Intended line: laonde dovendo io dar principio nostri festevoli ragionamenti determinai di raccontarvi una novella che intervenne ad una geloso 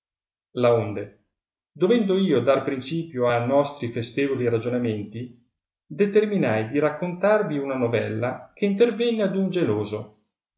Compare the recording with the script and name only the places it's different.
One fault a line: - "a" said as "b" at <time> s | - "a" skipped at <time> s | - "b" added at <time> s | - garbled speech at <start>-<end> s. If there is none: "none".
- "a" added at 3.3 s
- "una" said as "un" at 9.3 s